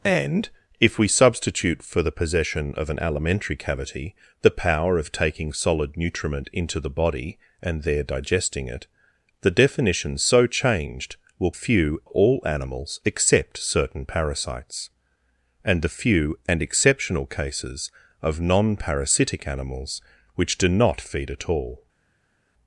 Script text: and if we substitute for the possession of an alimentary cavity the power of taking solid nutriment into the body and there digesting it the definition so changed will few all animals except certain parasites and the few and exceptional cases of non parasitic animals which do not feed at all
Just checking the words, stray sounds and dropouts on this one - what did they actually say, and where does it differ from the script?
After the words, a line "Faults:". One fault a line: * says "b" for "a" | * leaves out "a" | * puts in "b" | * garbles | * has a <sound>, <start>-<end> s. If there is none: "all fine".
and if we substitute for the possession of an alimentary cavity the power of taking solid nutriment into the body and there digesting it the definition so changed will few all animals except certain parasites and the few and exceptional cases of non parasitic animals which do not feed at all
Faults:
all fine